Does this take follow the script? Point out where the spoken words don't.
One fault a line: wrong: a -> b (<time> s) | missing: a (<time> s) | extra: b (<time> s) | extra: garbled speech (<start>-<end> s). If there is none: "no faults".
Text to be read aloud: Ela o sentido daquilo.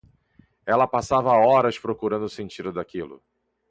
extra: passava horas procurando (0.9 s)